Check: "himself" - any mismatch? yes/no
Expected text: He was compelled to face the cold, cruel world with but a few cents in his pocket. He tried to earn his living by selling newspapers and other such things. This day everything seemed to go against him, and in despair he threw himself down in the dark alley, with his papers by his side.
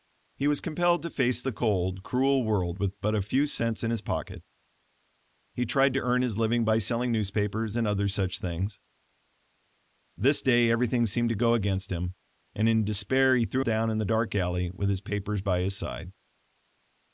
yes